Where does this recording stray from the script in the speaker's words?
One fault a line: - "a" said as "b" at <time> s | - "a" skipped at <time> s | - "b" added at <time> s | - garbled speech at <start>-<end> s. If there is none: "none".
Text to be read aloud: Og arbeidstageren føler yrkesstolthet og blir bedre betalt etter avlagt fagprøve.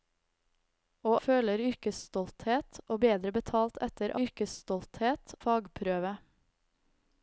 - "arbeidstageren" skipped at 1.2 s
- "blir" skipped at 3.0 s
- "avlagt" said as "yrkesstolthet" at 4.2 s